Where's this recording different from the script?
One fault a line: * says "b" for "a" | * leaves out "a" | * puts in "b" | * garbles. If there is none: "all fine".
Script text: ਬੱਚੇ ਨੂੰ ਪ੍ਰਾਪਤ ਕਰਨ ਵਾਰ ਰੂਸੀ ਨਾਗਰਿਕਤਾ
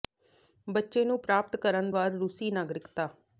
all fine